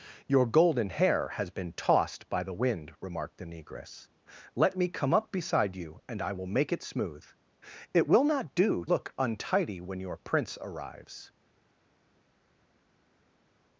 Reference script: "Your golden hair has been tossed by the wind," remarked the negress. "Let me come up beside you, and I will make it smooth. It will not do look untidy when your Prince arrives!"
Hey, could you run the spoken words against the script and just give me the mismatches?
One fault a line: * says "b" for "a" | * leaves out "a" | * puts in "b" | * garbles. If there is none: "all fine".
all fine